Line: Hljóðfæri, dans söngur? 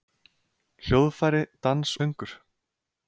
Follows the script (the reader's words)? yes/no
yes